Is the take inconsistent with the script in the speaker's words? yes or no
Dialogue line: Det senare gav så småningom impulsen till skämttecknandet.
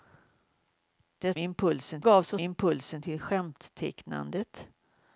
yes